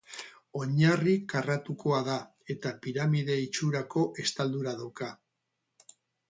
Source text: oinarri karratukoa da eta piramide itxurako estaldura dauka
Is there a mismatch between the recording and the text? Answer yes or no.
no